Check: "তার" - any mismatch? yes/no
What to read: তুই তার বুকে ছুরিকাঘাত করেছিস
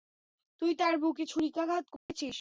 no